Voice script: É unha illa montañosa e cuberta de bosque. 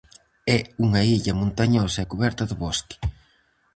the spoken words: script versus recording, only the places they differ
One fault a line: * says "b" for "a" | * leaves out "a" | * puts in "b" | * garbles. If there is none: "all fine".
all fine